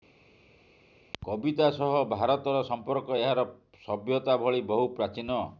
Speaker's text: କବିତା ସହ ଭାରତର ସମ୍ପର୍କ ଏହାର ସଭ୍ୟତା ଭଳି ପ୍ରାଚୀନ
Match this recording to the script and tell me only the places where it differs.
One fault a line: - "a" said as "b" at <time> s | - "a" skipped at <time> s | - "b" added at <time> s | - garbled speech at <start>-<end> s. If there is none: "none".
- "ବହୁ" added at 4.7 s